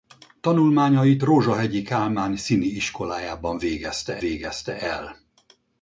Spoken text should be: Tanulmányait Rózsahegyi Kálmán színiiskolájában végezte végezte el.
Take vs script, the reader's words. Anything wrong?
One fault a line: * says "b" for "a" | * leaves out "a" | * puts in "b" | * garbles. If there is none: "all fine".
all fine